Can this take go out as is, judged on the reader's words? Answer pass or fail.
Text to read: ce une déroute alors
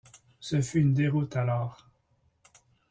fail